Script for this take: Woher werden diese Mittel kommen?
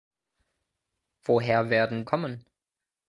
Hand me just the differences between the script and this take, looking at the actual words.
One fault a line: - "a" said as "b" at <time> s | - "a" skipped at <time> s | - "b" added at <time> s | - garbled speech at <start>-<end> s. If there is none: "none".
- "diese Mittel" skipped at 2.0 s